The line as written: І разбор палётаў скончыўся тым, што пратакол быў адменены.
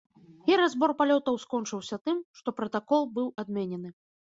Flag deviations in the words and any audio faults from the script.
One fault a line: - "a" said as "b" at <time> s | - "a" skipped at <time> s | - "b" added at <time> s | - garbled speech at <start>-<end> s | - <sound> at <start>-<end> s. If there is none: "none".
none